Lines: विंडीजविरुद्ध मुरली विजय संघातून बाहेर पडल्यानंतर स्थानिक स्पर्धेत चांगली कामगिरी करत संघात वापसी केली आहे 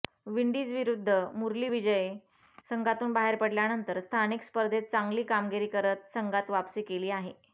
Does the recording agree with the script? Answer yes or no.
yes